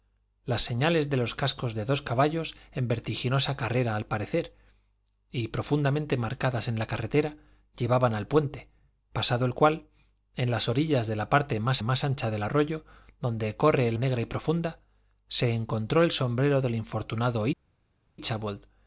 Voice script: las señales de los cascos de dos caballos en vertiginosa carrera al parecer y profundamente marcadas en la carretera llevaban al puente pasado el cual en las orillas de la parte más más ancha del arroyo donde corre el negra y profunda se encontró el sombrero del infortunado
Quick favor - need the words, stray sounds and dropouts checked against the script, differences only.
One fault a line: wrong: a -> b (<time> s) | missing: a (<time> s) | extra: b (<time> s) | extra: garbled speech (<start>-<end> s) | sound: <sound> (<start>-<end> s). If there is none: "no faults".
no faults